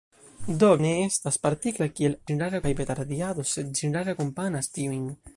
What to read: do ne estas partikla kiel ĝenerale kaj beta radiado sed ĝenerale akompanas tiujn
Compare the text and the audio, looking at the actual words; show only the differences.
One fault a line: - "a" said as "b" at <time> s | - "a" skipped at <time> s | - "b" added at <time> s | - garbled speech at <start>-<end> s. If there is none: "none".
none